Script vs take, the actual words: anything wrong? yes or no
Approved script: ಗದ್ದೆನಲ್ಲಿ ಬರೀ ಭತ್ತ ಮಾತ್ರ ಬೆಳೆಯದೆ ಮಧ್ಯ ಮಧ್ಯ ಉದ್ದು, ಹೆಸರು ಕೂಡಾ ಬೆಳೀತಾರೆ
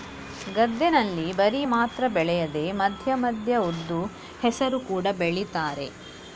yes